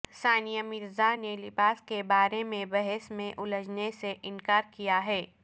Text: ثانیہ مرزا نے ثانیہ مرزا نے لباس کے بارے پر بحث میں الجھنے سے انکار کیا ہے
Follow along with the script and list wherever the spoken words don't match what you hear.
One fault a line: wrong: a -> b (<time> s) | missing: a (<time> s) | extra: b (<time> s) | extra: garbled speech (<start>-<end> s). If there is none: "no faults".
missing: ثانیہ مرزا نے (1.3 s)
wrong: پر -> میں (2.4 s)